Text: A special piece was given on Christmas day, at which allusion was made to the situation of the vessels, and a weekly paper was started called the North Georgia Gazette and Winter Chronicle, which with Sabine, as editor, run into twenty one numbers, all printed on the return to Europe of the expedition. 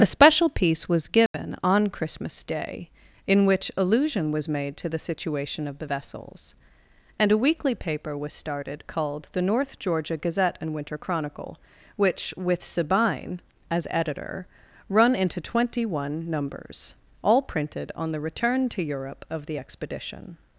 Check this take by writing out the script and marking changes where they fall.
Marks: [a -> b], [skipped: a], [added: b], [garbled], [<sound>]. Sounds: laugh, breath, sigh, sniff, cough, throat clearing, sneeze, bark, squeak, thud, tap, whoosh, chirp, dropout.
A special piece was given [dropout] on Christmas day, [at -> in] which allusion was made to the situation of the vessels, and a weekly paper was started called the North Georgia Gazette and Winter Chronicle, which with Sabine, as editor, run into twenty one numbers, all printed on the return to Europe of the expedition.